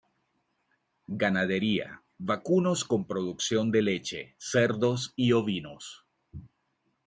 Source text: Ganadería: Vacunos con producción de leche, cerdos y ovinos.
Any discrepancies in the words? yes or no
no